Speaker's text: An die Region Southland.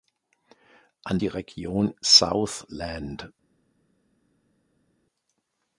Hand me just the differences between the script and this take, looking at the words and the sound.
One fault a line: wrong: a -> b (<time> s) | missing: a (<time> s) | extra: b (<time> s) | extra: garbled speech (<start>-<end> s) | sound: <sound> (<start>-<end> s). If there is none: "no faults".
no faults